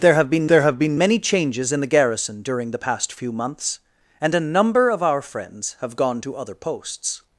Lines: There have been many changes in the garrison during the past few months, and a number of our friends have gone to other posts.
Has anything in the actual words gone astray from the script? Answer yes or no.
yes